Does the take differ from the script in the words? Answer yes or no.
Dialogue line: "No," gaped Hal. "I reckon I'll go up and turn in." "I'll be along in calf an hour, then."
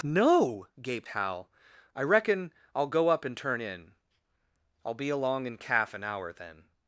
no